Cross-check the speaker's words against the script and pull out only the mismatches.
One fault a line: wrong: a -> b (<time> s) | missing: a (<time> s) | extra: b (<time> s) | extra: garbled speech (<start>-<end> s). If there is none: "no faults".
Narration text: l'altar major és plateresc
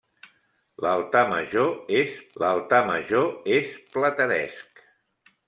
extra: l'altar major és (2.4 s)